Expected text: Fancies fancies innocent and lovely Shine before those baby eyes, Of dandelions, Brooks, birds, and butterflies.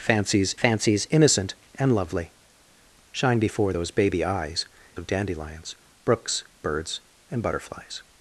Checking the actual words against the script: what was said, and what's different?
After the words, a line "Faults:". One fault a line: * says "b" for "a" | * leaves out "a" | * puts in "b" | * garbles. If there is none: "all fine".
Fancies fancies innocent and lovely Shine before those baby eyes, Of dandelions, Brooks, birds, and butterflies.
Faults:
all fine